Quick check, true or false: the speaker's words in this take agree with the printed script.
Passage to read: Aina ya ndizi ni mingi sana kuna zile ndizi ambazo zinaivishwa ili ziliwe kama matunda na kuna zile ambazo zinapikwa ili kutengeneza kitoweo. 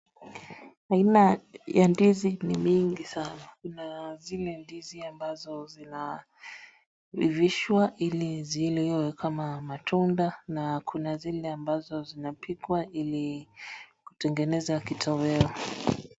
true